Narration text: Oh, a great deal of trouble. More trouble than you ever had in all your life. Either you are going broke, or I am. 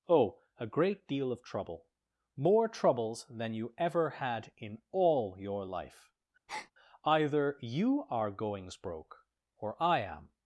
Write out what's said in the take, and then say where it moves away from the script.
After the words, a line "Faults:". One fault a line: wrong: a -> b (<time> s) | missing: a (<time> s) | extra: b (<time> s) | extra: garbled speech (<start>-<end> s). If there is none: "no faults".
Oh, a great deal of trouble. More troubles than you ever had in all your life. Either you are goings broke, or I am.
Faults:
wrong: trouble -> troubles (2.7 s)
wrong: going -> goings (8.3 s)